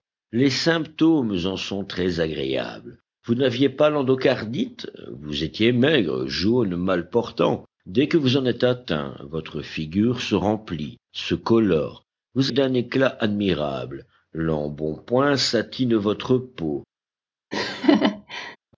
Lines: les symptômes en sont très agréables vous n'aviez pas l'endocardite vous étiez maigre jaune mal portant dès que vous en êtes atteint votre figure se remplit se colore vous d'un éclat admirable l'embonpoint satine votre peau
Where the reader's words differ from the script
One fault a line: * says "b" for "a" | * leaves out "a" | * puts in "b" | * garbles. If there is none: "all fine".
all fine